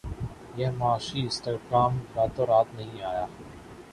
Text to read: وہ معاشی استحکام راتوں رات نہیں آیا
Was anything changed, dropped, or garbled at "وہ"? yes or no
yes